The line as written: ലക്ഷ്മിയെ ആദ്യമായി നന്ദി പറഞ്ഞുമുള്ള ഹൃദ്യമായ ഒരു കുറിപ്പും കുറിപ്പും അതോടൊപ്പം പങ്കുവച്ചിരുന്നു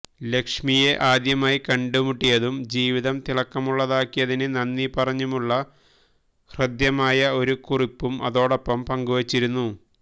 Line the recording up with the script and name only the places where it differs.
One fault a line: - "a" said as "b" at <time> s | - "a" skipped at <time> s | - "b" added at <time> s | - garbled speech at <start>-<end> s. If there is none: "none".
- "കണ്ടുമുട്ടിയതും ജീവിതം തിളക്കമുള്ളതാക്കിയതിന്" added at 1.6 s
- "കുറിപ്പും" skipped at 8.2 s